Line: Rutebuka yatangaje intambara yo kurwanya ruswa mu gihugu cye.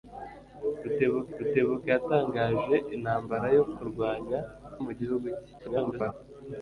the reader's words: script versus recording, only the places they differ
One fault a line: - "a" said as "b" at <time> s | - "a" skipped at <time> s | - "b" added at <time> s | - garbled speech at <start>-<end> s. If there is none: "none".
- "rutebuka" added at 1.4 s
- "ruswa" skipped at 4.4 s
- garbled speech at 5.6-6.1 s